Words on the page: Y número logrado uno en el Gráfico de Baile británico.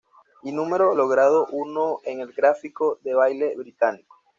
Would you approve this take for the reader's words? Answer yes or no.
yes